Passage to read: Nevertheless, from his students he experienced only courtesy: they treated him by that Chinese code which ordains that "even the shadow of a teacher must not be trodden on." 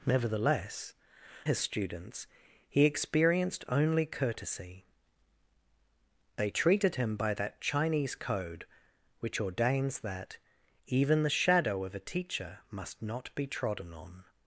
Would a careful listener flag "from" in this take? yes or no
yes